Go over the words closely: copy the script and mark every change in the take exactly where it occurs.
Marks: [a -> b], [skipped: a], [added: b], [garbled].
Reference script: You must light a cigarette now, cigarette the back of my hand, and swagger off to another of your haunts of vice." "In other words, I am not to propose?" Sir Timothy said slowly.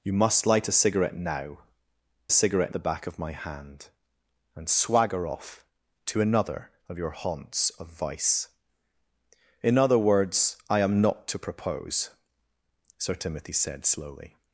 You must light a cigarette now, cigarette the back of my hand, and swagger off to another of your haunts of vice." "In other words, I am not to propose?" Sir Timothy said slowly.